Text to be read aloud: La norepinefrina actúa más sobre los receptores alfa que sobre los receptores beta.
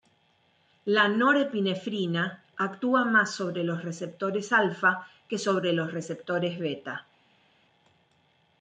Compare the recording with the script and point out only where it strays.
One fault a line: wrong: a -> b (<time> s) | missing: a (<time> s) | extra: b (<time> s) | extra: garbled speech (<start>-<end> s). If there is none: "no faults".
no faults